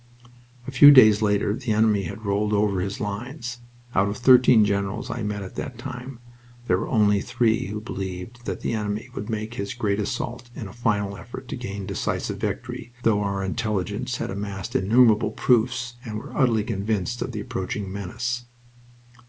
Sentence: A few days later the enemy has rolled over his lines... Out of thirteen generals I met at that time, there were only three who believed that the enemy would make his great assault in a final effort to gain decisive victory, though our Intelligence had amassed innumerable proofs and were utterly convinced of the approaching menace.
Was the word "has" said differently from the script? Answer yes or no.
yes